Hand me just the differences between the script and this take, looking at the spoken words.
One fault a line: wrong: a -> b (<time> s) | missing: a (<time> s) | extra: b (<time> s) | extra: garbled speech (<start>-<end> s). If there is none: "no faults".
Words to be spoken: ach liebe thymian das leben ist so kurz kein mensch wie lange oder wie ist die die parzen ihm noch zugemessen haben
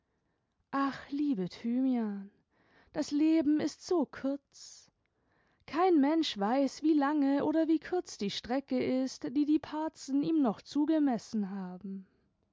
extra: weiß (6.4 s)
extra: kurz die strecke (7.8 s)